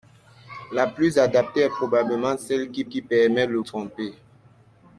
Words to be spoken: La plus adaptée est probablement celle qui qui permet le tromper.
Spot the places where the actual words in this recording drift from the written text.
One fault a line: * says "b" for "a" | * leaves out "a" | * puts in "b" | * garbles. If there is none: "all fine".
all fine